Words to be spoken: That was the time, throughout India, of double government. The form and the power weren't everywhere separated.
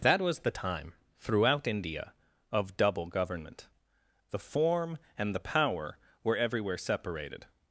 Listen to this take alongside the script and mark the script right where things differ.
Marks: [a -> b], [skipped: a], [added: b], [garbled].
That was the time, throughout India, of double government. The form and the power [weren't -> were] everywhere separated.